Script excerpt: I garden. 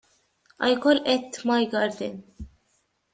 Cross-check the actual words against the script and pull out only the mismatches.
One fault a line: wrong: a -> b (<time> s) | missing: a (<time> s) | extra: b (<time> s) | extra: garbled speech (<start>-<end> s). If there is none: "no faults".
extra: call it my (0.8 s)